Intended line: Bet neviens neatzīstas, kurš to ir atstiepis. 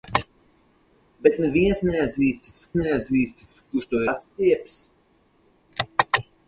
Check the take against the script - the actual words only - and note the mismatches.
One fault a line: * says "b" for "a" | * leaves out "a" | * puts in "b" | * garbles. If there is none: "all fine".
* puts in "neatzīstas"
* leaves out "ir"